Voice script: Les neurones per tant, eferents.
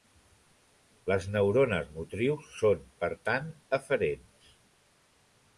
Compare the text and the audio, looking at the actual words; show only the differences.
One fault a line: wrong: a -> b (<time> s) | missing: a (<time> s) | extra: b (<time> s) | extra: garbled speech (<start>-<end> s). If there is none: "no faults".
extra: motrius són (2.0 s)